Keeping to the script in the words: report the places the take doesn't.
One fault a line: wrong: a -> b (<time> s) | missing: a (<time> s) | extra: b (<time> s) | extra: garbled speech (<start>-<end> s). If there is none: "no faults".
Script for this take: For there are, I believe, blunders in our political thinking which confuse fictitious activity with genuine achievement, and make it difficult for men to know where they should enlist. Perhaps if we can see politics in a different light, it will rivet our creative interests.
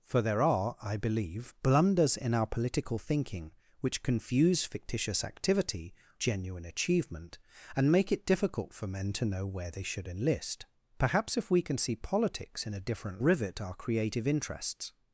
missing: with (5.9 s)
missing: light it will (13.2 s)